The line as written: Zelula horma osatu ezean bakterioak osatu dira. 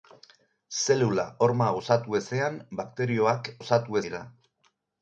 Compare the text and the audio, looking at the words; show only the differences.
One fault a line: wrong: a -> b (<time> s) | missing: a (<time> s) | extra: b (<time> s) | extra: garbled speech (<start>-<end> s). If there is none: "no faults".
no faults